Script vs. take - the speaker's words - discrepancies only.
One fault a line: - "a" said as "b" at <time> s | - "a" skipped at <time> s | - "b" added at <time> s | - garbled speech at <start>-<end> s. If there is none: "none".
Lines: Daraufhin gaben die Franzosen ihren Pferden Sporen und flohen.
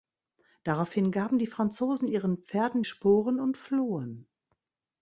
none